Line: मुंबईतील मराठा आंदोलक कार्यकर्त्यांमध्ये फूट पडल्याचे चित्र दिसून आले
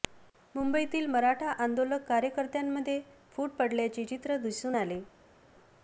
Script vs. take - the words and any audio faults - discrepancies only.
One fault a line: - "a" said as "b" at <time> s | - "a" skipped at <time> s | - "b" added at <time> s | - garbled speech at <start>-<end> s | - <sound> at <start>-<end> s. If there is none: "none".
none